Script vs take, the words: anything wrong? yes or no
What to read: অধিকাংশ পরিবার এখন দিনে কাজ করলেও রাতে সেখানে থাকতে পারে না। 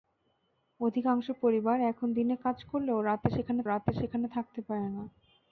yes